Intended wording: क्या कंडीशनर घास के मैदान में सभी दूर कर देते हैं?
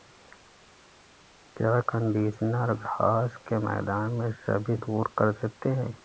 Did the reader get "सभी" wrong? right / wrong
right